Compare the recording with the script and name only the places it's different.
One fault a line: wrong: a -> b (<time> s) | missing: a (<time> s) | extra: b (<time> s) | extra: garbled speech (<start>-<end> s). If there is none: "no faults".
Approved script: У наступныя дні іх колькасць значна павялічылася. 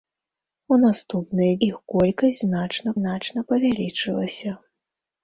missing: дні (1.5 s)
extra: значна (3.0 s)